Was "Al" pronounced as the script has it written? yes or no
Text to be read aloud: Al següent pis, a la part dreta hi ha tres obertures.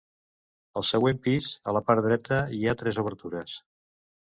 yes